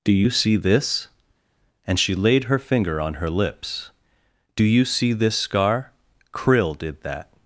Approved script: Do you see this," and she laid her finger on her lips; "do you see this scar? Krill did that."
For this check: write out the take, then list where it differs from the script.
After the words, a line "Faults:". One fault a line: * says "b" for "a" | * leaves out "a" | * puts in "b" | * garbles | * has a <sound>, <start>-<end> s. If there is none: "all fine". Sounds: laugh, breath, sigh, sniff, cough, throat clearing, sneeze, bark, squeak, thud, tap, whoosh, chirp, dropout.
Do you see this," and she laid her finger on her lips; "do you see this scar? Krill did that."
Faults:
all fine